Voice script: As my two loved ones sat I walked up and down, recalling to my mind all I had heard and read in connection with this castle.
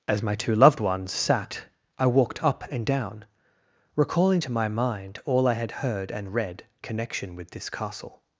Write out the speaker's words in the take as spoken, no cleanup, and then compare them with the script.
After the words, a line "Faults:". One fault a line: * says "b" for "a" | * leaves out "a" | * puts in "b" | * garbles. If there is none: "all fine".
As my two loved ones sat I walked up and down, recalling to my mind all I had heard and read connection with this castle.
Faults:
* leaves out "in"